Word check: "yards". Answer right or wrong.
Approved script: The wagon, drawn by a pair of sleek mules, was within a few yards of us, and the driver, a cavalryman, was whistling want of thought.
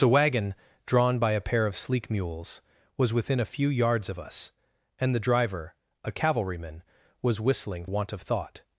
right